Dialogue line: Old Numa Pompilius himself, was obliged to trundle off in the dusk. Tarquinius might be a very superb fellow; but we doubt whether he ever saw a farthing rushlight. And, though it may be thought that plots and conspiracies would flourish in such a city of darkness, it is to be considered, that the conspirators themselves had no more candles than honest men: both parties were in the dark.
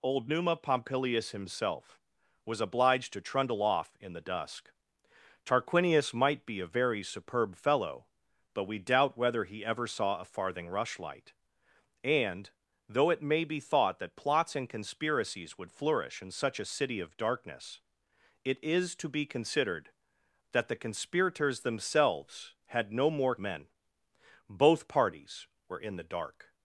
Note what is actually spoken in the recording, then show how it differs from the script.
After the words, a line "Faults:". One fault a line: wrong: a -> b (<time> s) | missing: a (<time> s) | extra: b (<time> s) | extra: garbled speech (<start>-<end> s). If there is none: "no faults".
Old Numa Pompilius himself, was obliged to trundle off in the dusk. Tarquinius might be a very superb fellow; but we doubt whether he ever saw a farthing rushlight. And, though it may be thought that plots and conspiracies would flourish in such a city of darkness, it is to be considered, that the conspirators themselves had no more men: both parties were in the dark.
Faults:
missing: candles than honest (23.3 s)